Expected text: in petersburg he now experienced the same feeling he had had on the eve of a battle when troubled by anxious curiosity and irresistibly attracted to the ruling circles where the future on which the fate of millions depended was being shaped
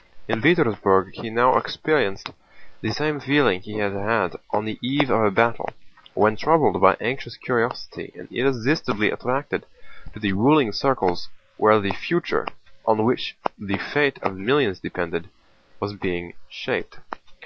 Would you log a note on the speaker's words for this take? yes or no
no